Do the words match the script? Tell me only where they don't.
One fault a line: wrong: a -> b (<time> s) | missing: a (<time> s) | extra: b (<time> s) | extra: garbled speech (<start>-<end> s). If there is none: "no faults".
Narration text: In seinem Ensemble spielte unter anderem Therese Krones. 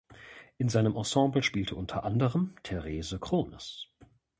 no faults